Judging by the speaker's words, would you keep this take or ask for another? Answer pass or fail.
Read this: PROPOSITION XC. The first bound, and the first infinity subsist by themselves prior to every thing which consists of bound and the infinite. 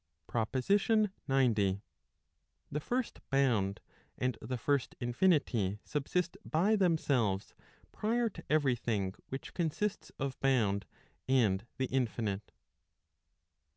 pass